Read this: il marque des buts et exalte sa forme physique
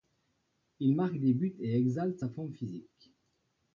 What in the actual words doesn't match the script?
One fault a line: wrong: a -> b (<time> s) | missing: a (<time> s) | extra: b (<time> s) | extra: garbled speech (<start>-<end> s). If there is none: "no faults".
no faults